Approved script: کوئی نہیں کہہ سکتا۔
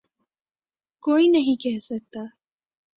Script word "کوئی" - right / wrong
right